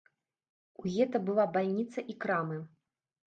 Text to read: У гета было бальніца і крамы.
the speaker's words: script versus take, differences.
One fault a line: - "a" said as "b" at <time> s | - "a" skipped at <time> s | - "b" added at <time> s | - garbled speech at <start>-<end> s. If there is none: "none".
- "было" said as "была" at 1.3 s